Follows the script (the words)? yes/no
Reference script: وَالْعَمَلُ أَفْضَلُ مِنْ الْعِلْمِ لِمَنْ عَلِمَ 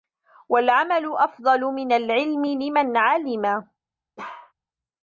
yes